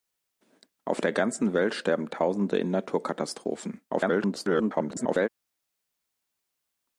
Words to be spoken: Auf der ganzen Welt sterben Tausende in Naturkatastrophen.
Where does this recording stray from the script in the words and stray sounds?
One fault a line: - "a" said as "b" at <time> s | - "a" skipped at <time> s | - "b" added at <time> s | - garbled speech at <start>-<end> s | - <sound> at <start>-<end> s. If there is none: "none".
- garbled speech at 3.9-5.3 s